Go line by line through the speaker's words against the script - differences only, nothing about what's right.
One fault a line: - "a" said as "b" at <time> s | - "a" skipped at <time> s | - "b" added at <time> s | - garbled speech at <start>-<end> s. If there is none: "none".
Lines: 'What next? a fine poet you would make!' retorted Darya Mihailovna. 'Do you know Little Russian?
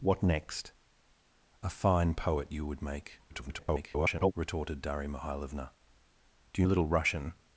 - garbled speech at 3.3-4.3 s
- "know" skipped at 6.7 s